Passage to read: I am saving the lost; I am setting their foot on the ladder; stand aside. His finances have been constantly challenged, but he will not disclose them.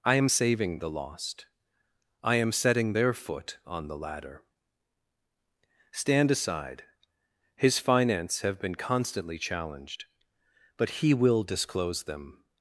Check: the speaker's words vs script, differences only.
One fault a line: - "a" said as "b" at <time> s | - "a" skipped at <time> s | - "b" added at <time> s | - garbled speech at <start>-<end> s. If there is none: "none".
- "finances" said as "finance" at 7.8 s
- "not" skipped at 11.4 s